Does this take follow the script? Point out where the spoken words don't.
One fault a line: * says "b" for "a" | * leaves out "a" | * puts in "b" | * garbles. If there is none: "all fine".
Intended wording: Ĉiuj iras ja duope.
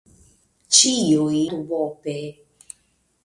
* leaves out "iras ja"